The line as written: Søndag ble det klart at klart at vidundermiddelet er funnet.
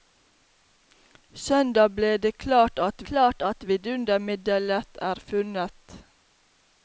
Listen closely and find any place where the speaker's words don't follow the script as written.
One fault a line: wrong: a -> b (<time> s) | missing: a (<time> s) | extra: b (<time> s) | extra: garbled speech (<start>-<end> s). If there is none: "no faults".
no faults